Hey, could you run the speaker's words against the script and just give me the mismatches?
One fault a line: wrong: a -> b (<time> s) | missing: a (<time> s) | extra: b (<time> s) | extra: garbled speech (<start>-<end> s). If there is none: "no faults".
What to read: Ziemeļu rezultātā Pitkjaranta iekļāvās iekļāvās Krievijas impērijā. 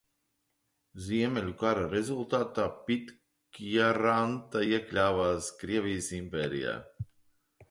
extra: kara (1.6 s)
missing: iekļāvās (5.5 s)